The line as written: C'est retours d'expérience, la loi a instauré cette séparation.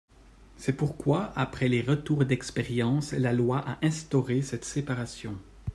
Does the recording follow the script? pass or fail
fail